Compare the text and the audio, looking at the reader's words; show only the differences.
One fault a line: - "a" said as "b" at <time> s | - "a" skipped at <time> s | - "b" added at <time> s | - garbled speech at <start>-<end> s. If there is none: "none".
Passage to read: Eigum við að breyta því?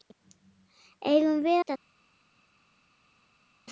- "að breyta" skipped at 1.6 s